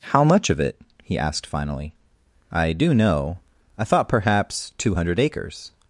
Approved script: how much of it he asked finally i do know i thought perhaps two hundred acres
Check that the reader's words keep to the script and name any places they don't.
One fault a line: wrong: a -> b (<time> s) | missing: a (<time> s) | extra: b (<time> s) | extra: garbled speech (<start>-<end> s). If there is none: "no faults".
no faults